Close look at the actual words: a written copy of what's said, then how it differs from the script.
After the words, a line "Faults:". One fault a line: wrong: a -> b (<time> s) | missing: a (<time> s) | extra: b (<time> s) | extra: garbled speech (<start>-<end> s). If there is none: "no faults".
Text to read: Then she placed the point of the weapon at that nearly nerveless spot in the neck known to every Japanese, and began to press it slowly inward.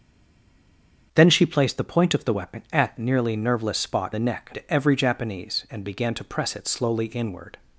Then she placed the point of the weapon at nearly nerveless spot the neck to every Japanese, and began to press it slowly inward.
Faults:
missing: that (3.0 s)
missing: in (4.1 s)
missing: known (4.5 s)